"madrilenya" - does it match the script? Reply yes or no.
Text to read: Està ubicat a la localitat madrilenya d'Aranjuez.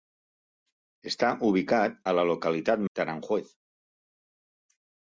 no